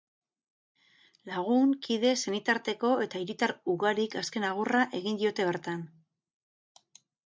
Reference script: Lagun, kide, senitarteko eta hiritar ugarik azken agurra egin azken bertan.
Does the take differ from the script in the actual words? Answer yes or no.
yes